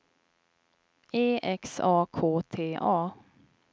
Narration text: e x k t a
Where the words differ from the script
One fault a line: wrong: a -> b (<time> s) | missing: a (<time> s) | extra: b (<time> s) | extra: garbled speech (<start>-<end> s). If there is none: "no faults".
extra: a (1.8 s)